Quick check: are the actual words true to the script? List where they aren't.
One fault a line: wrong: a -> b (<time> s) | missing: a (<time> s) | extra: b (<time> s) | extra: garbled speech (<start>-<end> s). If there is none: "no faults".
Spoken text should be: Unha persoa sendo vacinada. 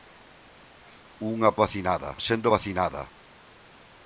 wrong: persoa -> vacinada (1.6 s)